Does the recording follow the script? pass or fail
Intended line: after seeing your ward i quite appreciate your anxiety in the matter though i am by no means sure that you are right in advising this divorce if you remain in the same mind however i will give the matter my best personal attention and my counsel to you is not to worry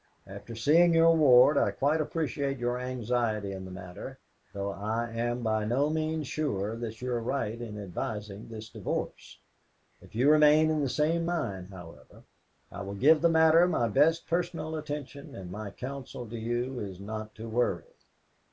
pass